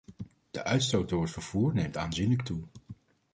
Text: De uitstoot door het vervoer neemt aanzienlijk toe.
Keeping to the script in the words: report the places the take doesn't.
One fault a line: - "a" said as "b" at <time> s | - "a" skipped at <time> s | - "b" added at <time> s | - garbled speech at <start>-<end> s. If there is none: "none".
none